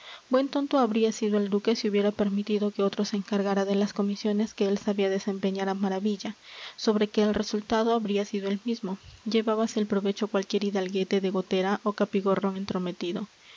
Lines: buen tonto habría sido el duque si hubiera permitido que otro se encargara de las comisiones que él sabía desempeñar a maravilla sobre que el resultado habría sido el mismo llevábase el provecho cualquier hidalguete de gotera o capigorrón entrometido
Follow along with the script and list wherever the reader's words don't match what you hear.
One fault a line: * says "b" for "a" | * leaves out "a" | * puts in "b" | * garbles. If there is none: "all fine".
all fine